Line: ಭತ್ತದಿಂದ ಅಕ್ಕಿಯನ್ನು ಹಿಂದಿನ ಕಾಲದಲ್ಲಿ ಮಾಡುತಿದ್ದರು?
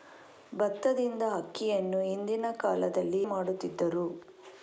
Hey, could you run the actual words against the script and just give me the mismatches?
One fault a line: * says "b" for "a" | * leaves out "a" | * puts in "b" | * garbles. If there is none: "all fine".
all fine